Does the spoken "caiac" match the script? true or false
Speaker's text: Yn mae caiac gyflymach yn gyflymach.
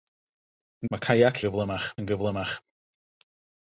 true